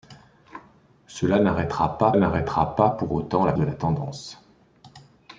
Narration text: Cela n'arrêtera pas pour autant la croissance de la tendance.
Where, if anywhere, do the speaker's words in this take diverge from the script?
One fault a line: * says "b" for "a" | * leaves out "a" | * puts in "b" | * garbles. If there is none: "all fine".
* puts in "n'arrêtera pas"
* leaves out "croissance"